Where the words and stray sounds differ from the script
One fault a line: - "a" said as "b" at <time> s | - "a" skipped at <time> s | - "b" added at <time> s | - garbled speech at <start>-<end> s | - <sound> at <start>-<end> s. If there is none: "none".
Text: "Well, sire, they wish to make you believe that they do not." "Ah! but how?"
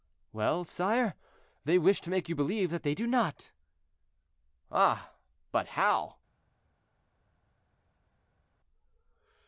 none